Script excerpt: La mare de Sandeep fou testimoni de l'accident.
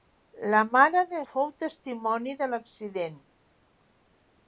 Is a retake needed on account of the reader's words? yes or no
yes